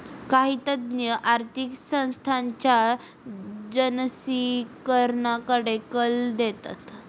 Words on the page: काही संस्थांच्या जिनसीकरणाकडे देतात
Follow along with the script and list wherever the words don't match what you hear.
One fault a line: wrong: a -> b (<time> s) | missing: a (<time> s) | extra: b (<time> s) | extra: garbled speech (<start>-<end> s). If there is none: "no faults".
extra: तज्ञ आर्थिक (0.7 s)
extra: कल (5.9 s)